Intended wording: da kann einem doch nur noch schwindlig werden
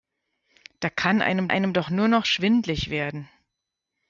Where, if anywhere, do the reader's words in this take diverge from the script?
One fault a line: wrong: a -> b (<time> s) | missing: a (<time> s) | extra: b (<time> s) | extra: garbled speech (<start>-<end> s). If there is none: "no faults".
extra: einem (1.5 s)